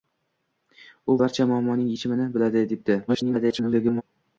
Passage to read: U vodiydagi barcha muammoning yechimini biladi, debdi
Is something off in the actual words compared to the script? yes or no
yes